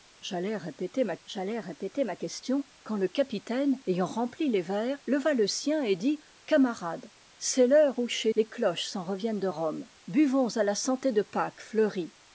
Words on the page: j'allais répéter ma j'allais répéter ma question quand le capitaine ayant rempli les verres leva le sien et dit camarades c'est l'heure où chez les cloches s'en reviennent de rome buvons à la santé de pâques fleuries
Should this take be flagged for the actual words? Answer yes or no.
no